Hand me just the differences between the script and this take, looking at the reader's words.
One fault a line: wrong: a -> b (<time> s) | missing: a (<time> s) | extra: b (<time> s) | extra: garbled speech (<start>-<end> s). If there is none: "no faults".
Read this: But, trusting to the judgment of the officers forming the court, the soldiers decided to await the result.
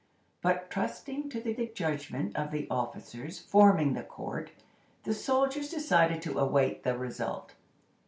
extra: the (1.5 s)